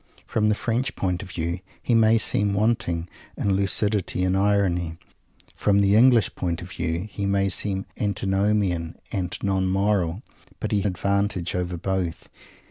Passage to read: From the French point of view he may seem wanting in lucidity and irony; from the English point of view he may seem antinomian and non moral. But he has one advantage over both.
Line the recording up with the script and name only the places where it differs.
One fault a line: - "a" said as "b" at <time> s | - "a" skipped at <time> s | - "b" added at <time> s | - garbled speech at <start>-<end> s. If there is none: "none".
- "has one" skipped at 10.8 s